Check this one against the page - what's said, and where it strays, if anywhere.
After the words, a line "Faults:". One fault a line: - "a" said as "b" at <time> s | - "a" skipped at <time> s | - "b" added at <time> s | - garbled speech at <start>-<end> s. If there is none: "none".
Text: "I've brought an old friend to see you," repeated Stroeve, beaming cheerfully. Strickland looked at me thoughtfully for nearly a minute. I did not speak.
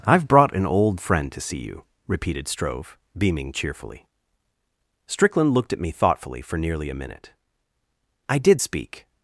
"I've brought an old friend to see you," repeated Stroeve, beaming cheerfully. Strickland looked at me thoughtfully for nearly a minute. I did speak.
Faults:
- "not" skipped at 8.6 s